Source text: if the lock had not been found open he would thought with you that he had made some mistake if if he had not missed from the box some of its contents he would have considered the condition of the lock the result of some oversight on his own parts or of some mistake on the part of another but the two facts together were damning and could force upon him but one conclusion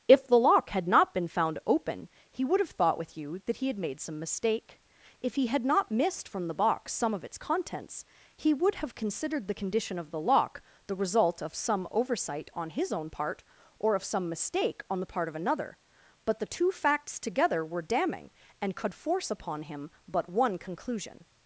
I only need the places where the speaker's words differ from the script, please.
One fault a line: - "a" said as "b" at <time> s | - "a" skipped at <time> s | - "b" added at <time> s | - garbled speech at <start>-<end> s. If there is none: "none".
- "have" added at 2.6 s
- "if" skipped at 5.3 s
- "parts" said as "part" at 13.1 s